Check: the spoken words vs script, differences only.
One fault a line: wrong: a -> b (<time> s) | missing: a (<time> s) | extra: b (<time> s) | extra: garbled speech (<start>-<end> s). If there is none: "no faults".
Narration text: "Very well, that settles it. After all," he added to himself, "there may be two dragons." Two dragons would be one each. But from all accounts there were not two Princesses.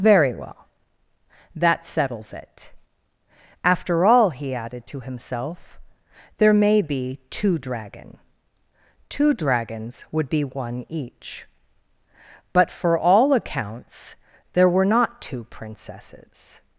wrong: dragons -> dragon (7.6 s)
wrong: from -> for (12.7 s)